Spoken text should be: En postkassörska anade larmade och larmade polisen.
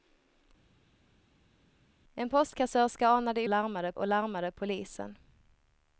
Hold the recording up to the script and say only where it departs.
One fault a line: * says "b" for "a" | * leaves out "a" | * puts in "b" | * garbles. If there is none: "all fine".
all fine